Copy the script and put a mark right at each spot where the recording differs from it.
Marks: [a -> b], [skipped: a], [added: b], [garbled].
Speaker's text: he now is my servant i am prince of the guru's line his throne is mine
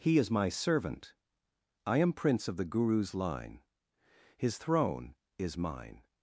he [skipped: now] is my servant i am prince of the guru's line his throne is mine